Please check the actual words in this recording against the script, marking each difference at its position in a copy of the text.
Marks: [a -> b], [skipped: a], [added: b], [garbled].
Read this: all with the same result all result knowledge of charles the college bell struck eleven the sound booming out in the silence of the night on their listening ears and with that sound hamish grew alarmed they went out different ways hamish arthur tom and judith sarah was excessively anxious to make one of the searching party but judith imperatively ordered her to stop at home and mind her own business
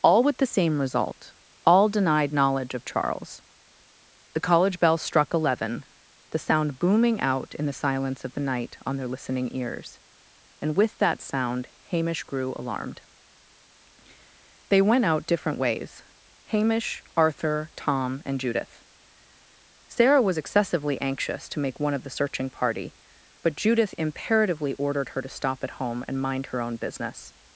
all with the same result all [result -> denied] knowledge of charles the college bell struck eleven the sound booming out in the silence of the night on their listening ears and with that sound hamish grew alarmed they went out different ways hamish arthur tom and judith sarah was excessively anxious to make one of the searching party but judith imperatively ordered her to stop at home and mind her own business